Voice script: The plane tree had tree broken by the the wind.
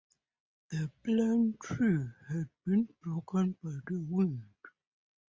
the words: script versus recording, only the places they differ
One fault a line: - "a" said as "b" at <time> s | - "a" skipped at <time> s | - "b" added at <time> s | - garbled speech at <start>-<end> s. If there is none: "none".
- "tree" said as "been" at 2.6 s
- "the" skipped at 4.1 s